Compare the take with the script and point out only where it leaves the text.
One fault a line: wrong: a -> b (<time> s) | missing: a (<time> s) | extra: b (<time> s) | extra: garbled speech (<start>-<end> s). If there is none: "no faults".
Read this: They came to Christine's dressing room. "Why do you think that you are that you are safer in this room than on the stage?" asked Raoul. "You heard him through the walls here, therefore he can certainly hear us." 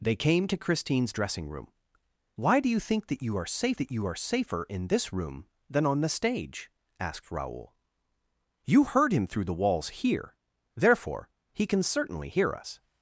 no faults